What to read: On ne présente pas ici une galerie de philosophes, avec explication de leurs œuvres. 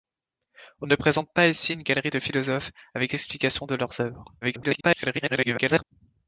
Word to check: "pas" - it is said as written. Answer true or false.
true